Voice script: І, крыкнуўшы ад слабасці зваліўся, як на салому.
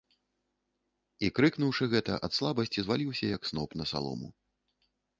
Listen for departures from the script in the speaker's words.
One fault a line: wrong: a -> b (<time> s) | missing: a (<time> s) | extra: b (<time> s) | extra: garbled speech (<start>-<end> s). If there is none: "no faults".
extra: гэта (1.9 s)
extra: сноп (3.5 s)